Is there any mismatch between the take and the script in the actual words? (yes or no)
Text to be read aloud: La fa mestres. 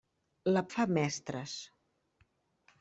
no